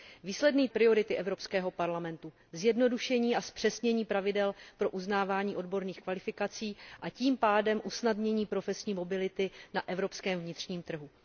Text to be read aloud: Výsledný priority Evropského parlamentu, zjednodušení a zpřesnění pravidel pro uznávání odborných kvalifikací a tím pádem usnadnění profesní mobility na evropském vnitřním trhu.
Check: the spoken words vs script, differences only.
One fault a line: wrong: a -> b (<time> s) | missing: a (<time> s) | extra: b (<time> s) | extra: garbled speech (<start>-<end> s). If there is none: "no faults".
no faults